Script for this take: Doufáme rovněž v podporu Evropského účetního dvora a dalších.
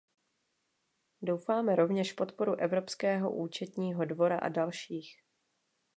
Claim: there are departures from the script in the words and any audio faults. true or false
false